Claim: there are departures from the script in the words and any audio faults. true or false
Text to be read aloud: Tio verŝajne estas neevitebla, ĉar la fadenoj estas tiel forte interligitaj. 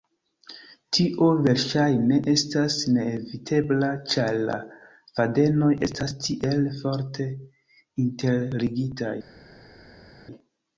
false